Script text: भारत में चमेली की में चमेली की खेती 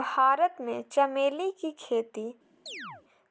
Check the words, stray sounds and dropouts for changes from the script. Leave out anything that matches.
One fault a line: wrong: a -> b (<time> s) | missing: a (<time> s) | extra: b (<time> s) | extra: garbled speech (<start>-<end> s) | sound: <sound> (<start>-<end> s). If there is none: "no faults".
missing: में चमेली की (1.7 s)
sound: chirp (2.7-3.0 s)